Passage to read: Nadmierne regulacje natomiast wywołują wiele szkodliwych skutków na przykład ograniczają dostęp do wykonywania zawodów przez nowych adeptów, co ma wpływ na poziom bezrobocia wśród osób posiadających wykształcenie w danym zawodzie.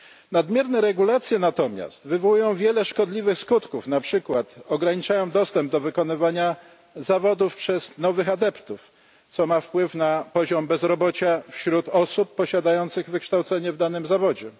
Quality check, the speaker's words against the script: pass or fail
pass